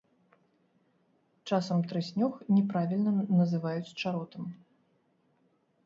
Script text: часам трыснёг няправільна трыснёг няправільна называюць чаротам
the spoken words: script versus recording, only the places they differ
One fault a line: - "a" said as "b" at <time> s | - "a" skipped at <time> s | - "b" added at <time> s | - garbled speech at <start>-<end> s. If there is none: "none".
- "трыснёг няправільна" skipped at 3.1 s